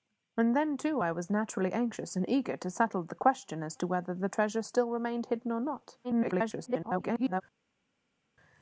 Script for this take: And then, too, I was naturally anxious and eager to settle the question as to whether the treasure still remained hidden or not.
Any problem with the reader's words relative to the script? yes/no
yes